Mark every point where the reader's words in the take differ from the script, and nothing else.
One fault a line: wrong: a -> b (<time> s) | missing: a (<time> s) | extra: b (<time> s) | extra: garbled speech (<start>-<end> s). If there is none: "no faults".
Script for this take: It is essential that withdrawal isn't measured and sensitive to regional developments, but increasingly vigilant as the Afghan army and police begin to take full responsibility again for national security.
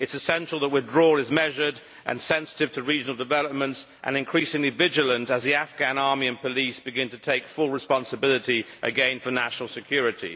wrong: isn't -> is (1.2 s)
wrong: but -> and (4.0 s)